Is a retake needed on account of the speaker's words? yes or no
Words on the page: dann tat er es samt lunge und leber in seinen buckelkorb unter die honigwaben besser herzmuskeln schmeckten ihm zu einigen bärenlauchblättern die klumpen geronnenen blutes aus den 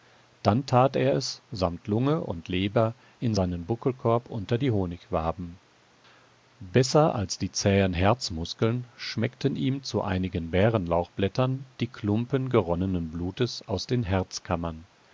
yes